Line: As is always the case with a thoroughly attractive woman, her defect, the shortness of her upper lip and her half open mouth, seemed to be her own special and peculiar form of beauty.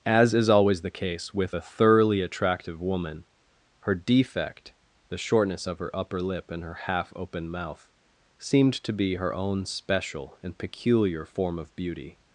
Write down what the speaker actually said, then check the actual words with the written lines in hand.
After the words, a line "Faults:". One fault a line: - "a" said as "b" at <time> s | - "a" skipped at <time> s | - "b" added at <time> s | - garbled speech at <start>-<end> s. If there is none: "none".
As is always the case with a thoroughly attractive woman, her defect, the shortness of her upper lip and her half open mouth, seemed to be her own special and peculiar form of beauty.
Faults:
none